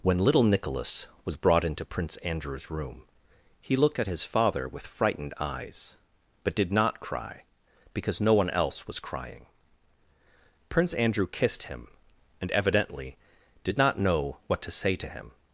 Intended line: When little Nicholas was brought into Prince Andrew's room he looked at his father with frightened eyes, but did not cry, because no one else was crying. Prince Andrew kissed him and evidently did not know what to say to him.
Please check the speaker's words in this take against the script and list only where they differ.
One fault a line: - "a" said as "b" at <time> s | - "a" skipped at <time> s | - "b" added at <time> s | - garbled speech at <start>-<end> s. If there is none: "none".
none